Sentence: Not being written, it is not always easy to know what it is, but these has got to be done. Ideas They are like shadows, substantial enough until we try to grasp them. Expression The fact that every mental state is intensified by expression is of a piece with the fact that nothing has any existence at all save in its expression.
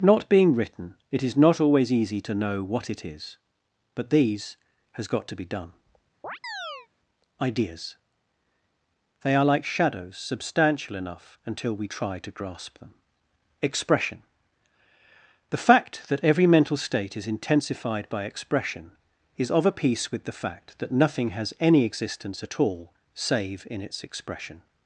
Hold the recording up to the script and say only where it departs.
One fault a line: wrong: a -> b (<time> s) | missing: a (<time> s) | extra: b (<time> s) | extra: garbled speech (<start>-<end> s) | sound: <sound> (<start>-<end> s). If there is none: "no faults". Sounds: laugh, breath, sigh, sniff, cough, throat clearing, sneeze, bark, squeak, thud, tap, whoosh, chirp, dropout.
sound: chirp (6.2-6.9 s)